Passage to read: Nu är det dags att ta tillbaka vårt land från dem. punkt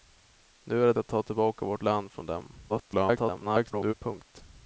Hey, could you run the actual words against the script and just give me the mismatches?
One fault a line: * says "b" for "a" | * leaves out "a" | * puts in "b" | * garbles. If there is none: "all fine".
* leaves out "dags"
* garbles